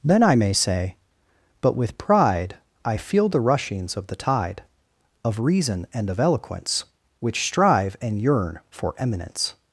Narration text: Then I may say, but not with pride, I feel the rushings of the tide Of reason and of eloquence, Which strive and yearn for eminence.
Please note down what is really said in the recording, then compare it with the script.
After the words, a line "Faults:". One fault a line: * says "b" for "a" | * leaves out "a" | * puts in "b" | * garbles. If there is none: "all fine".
Then I may say, but with pride, I feel the rushings of the tide Of reason and of eloquence, Which strive and yearn for eminence.
Faults:
* leaves out "not"